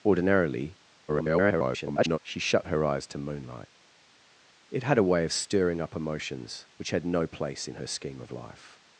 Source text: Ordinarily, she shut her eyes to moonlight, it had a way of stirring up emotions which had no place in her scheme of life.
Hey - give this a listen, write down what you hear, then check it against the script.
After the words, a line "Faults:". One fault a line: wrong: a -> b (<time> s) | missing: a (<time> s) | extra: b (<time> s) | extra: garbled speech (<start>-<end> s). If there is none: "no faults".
Ordinarily, [garbled] she shut her eyes to moonlight, it had a way of stirring up emotions which had no place in her scheme of life.
Faults:
extra: garbled speech (1.1-2.2 s)